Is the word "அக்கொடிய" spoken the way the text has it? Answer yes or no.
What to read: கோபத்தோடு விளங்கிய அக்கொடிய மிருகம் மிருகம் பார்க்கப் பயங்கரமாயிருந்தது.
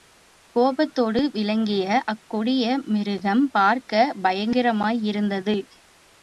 yes